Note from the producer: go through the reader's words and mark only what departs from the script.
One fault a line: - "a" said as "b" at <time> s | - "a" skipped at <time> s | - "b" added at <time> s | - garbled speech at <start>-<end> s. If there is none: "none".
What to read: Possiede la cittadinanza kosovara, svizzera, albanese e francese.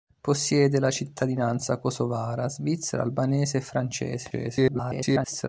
- garbled speech at 4.3-5.5 s